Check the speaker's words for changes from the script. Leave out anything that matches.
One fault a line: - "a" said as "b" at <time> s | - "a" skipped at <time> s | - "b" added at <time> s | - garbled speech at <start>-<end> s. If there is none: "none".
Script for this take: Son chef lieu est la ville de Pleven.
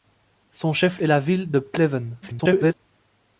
- "lieu" skipped at 1.0 s
- garbled speech at 2.2-2.7 s